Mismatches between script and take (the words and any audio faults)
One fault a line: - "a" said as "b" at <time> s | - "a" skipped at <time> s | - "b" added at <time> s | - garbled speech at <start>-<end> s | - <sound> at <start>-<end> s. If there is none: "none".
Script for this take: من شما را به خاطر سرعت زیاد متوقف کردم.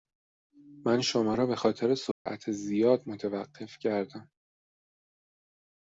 - dropout at 2.1-2.3 s